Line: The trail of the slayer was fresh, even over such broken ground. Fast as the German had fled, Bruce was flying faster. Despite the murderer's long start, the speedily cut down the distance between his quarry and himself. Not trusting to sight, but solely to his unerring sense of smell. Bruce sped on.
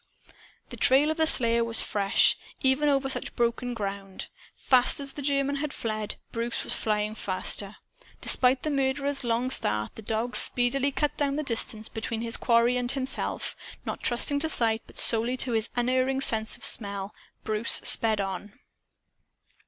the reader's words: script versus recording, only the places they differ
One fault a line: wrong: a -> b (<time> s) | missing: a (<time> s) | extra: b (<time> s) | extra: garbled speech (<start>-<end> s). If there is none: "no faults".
extra: dog (10.0 s)